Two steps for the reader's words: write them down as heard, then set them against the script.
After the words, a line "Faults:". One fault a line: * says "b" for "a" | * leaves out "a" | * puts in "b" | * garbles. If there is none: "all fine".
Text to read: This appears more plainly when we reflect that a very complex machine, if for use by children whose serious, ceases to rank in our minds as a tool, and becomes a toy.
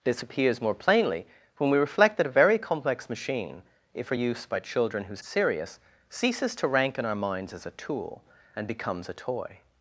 This appears more plainly when we reflect that a very complex machine, if for use by children whose serious, ceases to rank in our minds as a tool, and becomes a toy.
Faults:
all fine